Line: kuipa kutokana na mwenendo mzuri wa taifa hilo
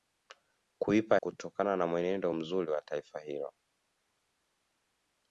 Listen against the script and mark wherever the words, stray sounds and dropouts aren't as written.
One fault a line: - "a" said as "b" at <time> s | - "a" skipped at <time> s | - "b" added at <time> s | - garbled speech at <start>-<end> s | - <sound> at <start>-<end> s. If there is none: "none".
none